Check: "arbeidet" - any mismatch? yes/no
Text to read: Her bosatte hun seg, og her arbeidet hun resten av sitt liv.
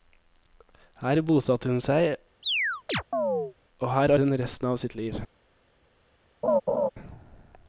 yes